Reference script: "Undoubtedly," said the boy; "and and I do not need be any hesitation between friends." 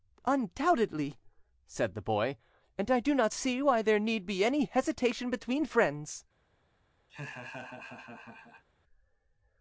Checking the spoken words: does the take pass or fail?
fail